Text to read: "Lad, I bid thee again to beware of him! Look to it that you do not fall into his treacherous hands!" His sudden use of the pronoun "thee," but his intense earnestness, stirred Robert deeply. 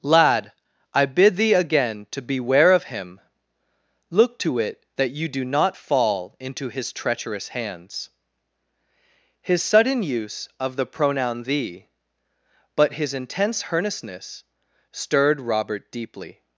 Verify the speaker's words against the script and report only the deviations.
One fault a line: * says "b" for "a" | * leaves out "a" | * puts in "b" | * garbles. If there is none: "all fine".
all fine